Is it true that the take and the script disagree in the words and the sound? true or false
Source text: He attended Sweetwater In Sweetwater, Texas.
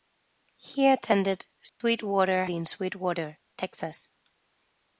true